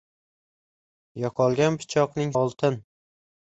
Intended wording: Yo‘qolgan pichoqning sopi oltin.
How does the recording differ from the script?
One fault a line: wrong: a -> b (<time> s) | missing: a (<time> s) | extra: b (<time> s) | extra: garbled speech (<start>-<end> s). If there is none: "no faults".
missing: sopi (2.3 s)